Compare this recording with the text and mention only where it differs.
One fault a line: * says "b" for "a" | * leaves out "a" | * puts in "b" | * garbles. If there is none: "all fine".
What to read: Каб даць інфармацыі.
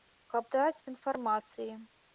all fine